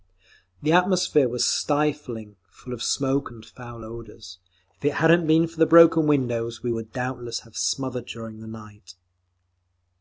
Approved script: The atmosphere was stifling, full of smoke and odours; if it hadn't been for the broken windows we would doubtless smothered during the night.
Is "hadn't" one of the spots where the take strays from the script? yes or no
no